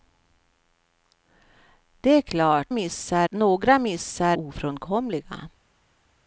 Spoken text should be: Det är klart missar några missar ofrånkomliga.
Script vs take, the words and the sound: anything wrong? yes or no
no